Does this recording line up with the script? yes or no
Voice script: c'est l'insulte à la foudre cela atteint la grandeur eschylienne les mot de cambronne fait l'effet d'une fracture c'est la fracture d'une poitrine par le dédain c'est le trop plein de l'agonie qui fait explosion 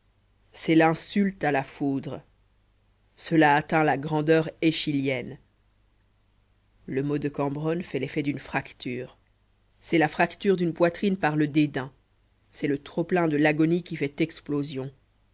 no